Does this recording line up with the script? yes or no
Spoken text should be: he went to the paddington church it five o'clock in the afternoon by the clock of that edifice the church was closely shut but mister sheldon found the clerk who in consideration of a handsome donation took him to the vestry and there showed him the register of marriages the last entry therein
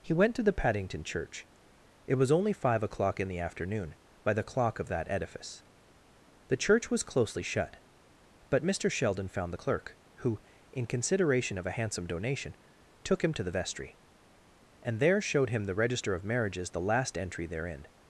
no